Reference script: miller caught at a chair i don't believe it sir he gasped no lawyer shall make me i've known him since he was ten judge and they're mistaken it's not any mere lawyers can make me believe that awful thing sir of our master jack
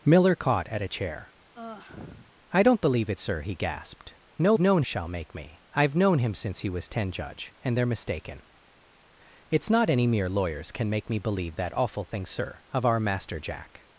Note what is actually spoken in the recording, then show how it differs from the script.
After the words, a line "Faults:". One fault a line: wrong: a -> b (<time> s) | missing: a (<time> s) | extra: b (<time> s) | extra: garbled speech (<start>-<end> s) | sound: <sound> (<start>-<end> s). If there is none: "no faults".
miller caught at a chair i don't believe it sir he gasped no known shall make me i've known him since he was ten judge and they're mistaken it's not any mere lawyers can make me believe that awful thing sir of our master jack
Faults:
sound: sigh (1.5-2.3 s)
wrong: lawyer -> known (4.6 s)